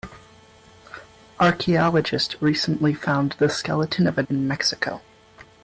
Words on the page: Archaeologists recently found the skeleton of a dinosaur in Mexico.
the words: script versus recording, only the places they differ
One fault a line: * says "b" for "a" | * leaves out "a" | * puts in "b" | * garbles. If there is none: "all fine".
* leaves out "dinosaur"